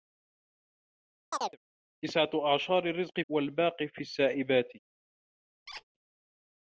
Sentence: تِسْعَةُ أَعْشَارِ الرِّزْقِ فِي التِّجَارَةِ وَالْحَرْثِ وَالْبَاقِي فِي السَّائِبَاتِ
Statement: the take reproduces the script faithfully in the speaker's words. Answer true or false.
false